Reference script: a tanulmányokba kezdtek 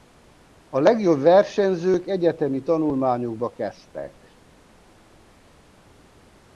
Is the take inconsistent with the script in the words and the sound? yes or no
yes